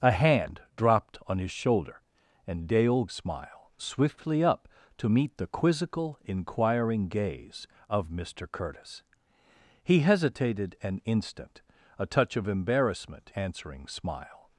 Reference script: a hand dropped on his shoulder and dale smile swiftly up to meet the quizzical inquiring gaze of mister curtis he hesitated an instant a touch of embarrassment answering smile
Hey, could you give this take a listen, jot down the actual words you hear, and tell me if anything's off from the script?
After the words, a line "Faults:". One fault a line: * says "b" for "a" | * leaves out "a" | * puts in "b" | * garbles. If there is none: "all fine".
a hand dropped on his shoulder and dale smile swiftly up to meet the quizzical inquiring gaze of mister curtis he hesitated an instant a touch of embarrassment answering smile
Faults:
all fine